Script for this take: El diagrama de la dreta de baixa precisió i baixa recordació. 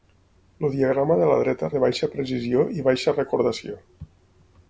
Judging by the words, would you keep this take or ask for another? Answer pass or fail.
pass